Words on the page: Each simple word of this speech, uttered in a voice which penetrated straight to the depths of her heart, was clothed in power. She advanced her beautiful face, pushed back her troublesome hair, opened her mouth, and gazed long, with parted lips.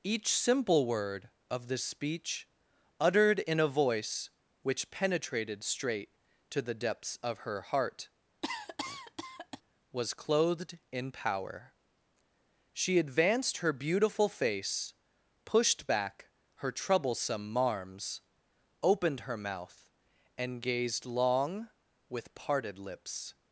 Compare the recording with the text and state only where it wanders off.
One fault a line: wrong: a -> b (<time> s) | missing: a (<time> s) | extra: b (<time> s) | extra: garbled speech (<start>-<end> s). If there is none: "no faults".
wrong: hair -> marms (17.5 s)